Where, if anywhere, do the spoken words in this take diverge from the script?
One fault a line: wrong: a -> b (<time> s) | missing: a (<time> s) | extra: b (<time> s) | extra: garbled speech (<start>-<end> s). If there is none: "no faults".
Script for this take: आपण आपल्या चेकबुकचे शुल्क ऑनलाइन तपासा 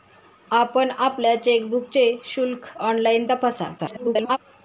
extra: garbled speech (3.8-4.4 s)